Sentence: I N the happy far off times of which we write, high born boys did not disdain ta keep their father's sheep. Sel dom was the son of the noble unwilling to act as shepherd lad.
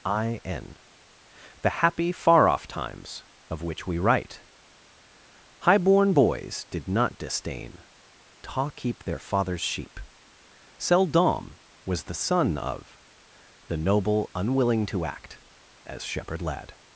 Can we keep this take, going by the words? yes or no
yes